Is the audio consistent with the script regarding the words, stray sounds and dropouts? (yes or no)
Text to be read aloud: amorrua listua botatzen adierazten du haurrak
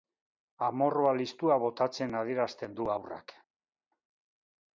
yes